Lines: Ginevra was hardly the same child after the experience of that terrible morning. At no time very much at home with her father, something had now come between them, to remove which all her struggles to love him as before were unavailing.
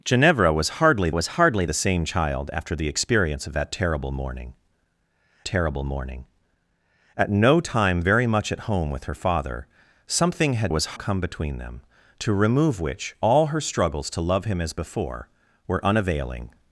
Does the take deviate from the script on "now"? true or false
true